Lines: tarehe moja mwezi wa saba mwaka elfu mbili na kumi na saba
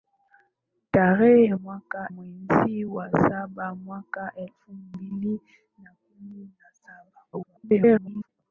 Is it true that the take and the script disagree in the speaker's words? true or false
true